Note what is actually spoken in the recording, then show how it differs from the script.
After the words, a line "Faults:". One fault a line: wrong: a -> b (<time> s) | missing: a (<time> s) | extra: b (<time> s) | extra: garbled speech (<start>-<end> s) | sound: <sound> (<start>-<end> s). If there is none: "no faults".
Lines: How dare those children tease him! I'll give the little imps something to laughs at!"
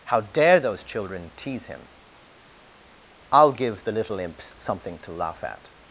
How dare those children tease him! I'll give the little imps something to laugh at!"
Faults:
wrong: laughs -> laugh (5.1 s)